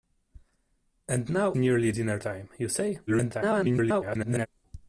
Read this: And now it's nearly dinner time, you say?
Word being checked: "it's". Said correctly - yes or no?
no